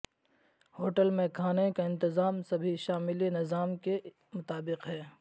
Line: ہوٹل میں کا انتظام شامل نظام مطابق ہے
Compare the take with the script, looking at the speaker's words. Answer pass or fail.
fail